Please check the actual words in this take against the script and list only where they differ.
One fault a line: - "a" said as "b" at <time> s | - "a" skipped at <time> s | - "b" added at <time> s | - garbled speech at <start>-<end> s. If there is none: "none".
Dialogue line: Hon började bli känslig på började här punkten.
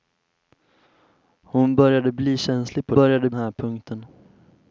none